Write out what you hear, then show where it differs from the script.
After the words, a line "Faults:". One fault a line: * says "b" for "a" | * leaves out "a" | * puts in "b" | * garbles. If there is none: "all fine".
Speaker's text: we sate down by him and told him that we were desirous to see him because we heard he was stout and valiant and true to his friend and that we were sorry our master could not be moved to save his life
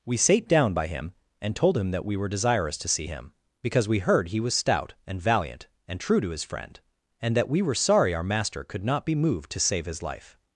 we sate down by him and told him that we were desirous to see him because we heard he was stout and valiant and true to his friend and that we were sorry our master could not be moved to save his life
Faults:
all fine